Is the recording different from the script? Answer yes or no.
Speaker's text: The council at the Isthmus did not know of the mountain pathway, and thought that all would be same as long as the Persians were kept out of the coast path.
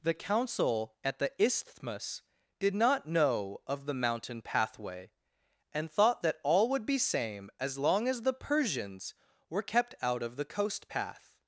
no